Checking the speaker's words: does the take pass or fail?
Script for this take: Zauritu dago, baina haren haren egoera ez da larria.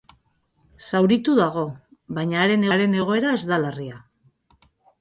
pass